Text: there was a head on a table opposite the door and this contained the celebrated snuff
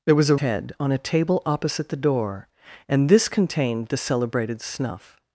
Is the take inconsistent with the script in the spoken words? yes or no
no